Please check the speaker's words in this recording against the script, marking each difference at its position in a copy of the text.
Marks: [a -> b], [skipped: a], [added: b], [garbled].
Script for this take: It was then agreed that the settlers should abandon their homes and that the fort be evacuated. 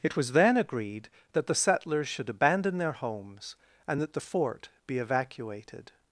It was then agreed that the settlers should abandon their homes and that the fort be evacuated.